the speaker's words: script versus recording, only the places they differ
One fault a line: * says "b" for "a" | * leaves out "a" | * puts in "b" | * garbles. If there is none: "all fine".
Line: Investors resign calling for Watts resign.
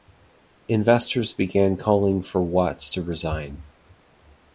* says "began" for "resign"
* puts in "to"